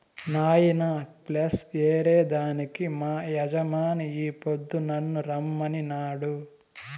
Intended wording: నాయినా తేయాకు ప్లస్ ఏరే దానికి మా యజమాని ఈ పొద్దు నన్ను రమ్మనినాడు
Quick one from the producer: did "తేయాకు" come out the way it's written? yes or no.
no